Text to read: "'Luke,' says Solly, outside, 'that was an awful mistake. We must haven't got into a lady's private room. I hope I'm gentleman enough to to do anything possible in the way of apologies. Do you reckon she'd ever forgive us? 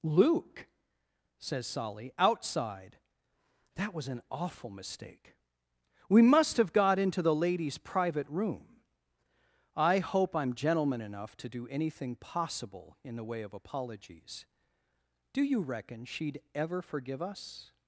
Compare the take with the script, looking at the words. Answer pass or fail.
fail